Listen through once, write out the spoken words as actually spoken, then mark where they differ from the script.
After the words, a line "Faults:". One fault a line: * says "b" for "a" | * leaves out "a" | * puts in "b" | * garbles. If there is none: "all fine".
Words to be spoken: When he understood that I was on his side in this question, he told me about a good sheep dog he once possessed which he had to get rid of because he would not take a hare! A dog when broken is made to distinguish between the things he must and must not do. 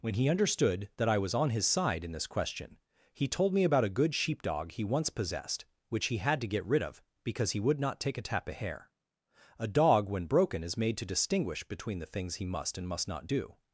When he understood that I was on his side in this question, he told me about a good sheep dog he once possessed which he had to get rid of because he would not take a tap of hair! A dog when broken is made to distinguish between the things he must and must not do.
Faults:
* says "tap of hair" for "hare"